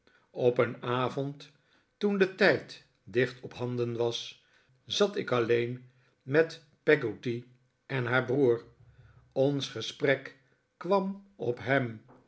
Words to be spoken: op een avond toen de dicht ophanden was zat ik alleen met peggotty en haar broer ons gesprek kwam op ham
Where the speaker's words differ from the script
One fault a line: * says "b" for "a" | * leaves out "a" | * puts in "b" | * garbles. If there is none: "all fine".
* puts in "tijd"